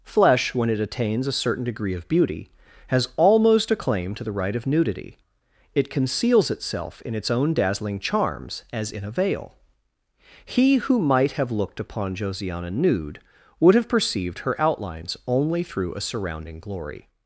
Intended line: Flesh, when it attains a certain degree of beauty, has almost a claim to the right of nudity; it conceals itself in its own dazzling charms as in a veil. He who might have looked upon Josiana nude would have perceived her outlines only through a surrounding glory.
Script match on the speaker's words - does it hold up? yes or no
yes